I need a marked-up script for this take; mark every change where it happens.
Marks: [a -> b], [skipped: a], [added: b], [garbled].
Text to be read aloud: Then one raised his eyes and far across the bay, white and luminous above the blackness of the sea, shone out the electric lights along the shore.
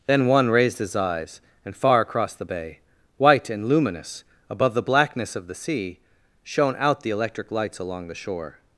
Then one raised his eyes and far across the bay, white and luminous above the blackness of the sea, shone out the electric lights along the shore.